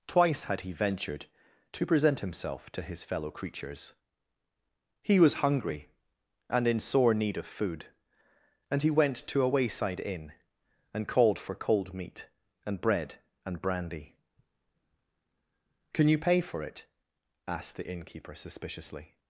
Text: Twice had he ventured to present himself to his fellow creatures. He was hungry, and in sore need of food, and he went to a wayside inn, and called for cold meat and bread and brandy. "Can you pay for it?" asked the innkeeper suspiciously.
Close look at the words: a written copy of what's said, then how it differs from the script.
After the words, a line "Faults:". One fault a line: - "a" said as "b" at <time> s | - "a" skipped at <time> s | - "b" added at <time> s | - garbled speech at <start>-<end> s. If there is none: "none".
Twice had he ventured to present himself to his fellow creatures. He was hungry, and in sore need of food, and he went to a wayside inn, and called for cold meat and bread and brandy. "Can you pay for it?" asked the innkeeper suspiciously.
Faults:
none